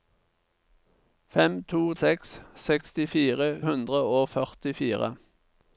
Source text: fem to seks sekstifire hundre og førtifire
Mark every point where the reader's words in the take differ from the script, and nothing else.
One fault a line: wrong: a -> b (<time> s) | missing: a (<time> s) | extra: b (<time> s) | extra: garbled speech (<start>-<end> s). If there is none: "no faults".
no faults